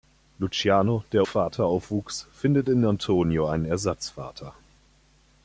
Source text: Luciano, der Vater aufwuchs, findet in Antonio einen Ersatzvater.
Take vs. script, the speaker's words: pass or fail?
pass